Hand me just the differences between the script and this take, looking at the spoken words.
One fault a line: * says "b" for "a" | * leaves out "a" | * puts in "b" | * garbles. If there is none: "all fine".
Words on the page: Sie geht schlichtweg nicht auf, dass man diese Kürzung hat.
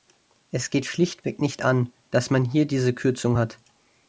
* says "Es" for "Sie"
* says "an" for "auf"
* puts in "hier"